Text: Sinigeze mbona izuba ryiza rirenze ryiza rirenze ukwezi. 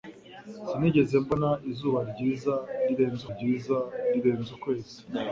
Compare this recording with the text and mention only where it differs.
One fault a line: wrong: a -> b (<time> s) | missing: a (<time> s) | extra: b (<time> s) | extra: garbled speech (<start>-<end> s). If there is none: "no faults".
no faults